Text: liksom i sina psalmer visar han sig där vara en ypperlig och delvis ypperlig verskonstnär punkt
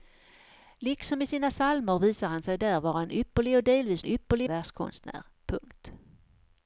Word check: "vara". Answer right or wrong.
right